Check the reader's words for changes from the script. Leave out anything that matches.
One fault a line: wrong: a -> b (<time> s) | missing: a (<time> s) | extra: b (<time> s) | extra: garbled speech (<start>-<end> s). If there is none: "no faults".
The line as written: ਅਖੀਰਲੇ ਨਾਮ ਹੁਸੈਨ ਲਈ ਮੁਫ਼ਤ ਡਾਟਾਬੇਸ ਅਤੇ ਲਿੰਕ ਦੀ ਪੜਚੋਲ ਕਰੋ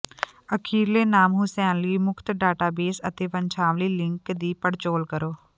extra: ਵੰਸ਼ਾਵਲੀ (3.3 s)